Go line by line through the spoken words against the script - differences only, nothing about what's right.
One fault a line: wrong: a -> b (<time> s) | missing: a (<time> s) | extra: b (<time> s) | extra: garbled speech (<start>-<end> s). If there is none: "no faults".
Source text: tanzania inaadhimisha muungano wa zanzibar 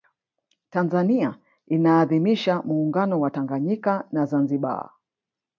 extra: tanganyika na (3.3 s)